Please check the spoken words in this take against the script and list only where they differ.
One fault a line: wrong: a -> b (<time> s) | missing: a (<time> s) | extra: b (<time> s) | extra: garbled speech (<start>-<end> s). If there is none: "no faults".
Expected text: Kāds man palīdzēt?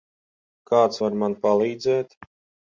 extra: var (1.0 s)